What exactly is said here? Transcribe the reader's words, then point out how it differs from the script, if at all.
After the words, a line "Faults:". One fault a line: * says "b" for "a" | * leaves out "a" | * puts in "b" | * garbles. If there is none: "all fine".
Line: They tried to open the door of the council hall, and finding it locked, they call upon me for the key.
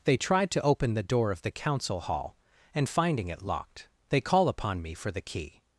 They tried to open the door of the council hall, and finding it locked, they call upon me for the key.
Faults:
all fine